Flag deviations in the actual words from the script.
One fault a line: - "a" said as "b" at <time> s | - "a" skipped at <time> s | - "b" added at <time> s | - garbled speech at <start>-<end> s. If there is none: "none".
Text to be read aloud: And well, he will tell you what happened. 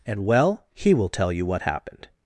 none